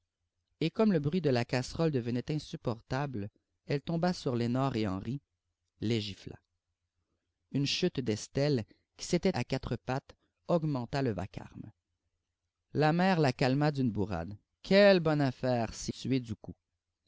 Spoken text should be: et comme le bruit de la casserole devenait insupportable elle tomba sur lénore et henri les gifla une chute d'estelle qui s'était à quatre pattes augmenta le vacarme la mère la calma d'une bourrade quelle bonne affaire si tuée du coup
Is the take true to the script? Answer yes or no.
yes